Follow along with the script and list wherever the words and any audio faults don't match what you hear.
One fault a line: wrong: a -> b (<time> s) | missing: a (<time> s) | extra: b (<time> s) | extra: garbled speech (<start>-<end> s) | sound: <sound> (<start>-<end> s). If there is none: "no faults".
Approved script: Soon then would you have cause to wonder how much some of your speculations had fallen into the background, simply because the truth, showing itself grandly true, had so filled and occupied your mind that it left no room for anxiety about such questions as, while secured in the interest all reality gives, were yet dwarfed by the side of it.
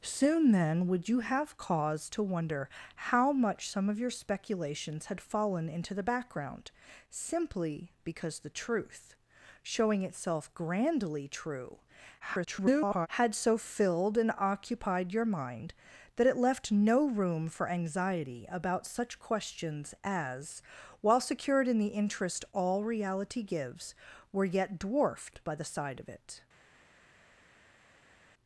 extra: garbled speech (12.2-13.1 s)